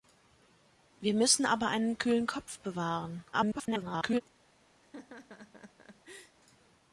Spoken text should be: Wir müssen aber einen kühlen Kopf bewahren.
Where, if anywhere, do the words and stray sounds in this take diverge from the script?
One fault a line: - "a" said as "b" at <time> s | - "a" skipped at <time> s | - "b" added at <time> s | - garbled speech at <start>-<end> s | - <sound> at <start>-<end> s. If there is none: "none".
- garbled speech at 3.3-4.2 s
- laugh at 4.8-6.4 s